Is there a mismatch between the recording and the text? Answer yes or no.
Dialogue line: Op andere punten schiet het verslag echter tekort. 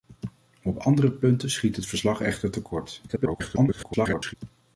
yes